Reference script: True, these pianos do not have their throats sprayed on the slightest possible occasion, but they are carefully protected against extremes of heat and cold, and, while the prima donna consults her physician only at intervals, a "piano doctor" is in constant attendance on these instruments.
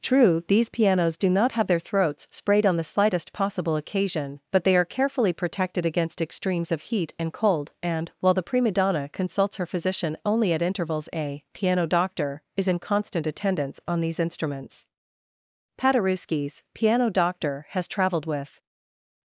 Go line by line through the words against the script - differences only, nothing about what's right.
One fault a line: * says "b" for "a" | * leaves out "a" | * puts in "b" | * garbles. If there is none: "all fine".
* puts in "Paderewski's piano doctor has traveled with"